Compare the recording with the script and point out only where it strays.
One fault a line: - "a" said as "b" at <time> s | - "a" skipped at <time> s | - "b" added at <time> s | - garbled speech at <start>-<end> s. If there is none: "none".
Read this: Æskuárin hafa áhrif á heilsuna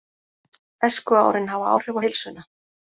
none